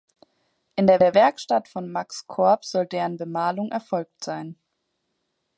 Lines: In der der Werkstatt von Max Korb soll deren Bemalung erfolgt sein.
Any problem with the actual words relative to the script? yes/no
no